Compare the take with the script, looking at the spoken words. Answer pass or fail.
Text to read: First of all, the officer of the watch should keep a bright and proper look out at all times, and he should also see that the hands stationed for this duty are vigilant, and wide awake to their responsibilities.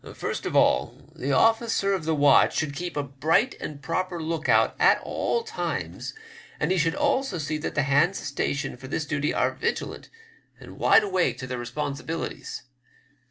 pass